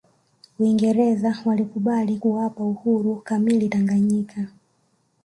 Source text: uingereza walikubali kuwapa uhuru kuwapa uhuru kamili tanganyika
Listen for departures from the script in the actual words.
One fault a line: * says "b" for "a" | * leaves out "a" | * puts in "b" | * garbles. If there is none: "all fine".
* leaves out "kuwapa uhuru"